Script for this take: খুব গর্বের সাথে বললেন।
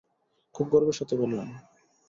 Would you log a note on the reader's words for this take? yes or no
no